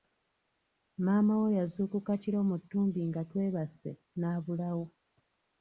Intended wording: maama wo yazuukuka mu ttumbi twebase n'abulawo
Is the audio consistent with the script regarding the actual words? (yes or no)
no